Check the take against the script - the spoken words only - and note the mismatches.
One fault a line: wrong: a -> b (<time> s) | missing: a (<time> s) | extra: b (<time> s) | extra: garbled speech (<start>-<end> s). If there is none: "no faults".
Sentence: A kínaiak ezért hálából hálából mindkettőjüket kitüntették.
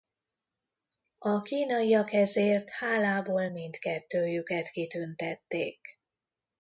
missing: hálából (3.5 s)